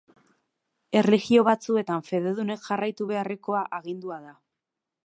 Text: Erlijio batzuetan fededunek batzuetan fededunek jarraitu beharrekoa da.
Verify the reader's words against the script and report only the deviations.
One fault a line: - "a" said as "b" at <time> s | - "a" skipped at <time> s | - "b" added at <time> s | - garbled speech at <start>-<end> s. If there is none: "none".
- "batzuetan fededunek" skipped at 2.7 s
- "agindua" added at 3.8 s